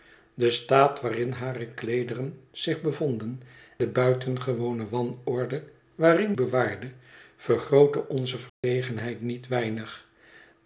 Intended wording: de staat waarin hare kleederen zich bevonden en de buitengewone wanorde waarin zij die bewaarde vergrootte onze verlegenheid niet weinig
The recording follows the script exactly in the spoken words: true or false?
false